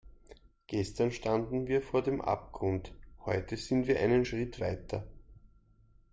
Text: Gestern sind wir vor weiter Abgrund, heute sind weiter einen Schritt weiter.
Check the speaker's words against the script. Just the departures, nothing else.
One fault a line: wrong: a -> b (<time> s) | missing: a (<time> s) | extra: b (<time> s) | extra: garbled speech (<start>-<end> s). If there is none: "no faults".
wrong: sind -> standen (1.1 s)
wrong: weiter -> dem (2.0 s)
wrong: weiter -> wir (3.9 s)